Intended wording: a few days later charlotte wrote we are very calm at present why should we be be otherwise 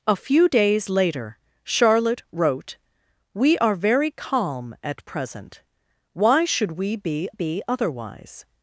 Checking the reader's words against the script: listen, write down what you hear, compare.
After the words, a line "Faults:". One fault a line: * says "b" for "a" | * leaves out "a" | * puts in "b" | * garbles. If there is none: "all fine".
a few days later charlotte wrote we are very calm at present why should we be be otherwise
Faults:
all fine